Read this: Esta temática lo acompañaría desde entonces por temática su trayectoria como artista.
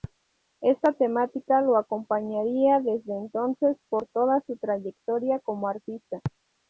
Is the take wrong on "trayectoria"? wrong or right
right